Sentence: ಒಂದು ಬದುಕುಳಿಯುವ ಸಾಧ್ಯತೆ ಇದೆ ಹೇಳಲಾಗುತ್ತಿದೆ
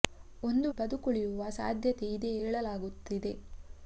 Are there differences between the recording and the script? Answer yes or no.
no